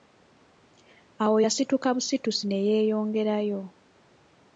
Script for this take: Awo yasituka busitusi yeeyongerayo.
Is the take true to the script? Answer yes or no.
no